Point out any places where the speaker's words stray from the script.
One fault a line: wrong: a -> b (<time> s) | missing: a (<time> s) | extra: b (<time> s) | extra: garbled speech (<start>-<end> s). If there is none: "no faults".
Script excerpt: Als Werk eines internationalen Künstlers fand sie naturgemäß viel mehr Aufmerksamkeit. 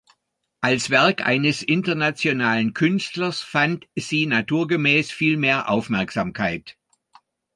no faults